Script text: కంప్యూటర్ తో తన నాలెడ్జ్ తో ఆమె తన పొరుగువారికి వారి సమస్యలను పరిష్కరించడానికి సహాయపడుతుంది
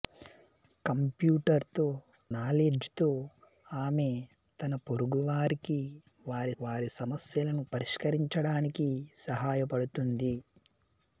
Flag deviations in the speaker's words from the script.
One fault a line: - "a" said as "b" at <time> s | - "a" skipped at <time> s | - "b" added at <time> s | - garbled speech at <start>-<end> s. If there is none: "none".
- "తన" skipped at 1.9 s
- "వారి" added at 6.6 s